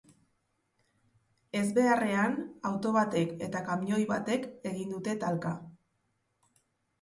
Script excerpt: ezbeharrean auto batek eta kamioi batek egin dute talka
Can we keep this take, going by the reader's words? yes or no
yes